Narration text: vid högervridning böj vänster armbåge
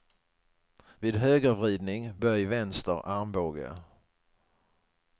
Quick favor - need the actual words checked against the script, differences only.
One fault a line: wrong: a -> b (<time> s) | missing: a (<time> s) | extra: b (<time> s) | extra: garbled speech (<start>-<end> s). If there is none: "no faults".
no faults